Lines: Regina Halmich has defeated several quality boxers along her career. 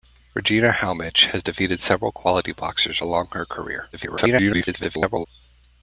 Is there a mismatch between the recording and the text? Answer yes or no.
yes